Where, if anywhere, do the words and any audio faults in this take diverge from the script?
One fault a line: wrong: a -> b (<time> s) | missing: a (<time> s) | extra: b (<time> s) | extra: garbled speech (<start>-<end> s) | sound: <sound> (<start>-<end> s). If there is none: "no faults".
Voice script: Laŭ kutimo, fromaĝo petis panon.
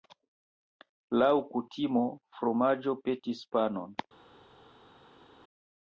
no faults